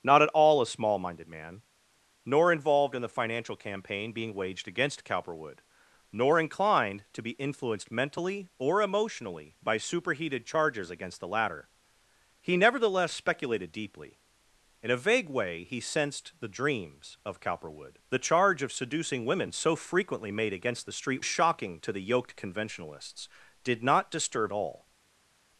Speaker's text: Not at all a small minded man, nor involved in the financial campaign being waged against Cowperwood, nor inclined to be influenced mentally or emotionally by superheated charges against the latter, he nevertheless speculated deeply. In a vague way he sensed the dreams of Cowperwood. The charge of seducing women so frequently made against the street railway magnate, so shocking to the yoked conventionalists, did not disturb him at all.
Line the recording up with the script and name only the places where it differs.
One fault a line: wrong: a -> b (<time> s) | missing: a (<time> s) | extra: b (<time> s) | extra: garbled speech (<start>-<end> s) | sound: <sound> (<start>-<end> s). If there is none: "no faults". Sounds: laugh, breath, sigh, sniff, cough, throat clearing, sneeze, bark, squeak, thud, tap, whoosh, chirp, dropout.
missing: railway magnate so (21.2 s)
missing: him at (24.5 s)